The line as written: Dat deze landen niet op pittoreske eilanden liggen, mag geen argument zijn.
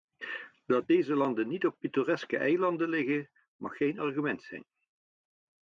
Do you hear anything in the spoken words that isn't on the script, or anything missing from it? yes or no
no